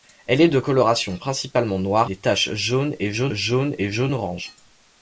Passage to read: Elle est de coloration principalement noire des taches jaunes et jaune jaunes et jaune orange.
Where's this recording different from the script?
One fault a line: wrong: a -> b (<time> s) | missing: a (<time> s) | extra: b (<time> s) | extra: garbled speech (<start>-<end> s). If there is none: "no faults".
no faults